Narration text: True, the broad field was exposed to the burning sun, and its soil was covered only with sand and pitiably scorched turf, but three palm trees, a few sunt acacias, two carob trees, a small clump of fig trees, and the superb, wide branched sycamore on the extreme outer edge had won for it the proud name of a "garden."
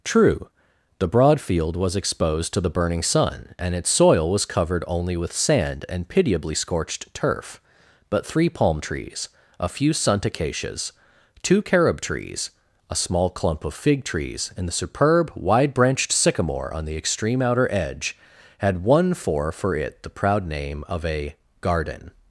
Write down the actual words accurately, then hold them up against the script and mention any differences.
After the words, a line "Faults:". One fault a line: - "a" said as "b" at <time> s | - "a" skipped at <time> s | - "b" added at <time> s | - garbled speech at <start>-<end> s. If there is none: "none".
True, the broad field was exposed to the burning sun, and its soil was covered only with sand and pitiably scorched turf, but three palm trees, a few sunt acacias, two carob trees, a small clump of fig trees, and the superb, wide branched sycamore on the extreme outer edge had won for for it the proud name of a "garden."
Faults:
- "for" added at 19.5 s